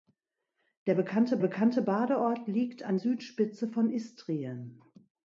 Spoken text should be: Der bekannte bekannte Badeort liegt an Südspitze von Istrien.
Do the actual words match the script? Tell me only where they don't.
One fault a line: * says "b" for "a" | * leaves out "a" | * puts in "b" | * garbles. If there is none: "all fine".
all fine